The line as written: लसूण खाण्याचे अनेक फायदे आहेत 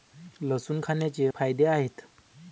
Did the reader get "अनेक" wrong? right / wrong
wrong